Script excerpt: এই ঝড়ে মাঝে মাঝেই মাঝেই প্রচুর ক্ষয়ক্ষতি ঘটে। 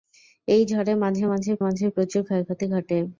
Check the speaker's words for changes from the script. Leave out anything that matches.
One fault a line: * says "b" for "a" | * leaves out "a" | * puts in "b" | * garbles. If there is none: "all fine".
all fine